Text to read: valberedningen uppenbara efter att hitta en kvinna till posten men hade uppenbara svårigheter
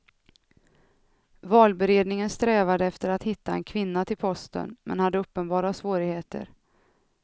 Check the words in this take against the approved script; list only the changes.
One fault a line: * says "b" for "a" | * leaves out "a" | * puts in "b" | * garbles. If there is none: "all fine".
* says "strävade" for "uppenbara"